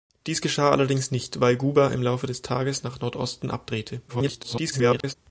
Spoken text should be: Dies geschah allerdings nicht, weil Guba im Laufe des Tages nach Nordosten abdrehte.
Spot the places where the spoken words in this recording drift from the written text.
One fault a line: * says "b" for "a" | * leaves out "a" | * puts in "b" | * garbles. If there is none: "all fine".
* garbles